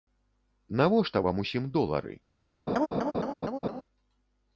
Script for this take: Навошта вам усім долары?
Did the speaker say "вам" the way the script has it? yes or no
yes